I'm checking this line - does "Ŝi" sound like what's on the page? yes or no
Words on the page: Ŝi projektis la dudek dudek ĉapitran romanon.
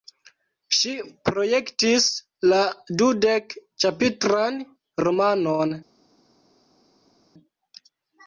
yes